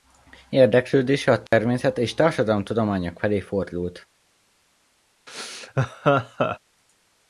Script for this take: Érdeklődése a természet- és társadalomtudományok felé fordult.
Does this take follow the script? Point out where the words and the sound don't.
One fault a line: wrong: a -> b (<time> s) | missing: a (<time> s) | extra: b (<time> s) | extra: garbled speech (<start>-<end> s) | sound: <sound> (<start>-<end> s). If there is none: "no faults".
sound: dropout (1.5-1.5 s)
sound: laugh (5.3-6.6 s)